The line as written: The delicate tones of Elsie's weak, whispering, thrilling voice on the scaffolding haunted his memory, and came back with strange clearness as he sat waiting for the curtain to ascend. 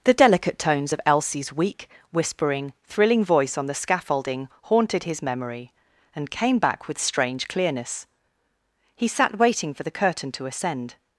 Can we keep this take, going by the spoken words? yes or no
no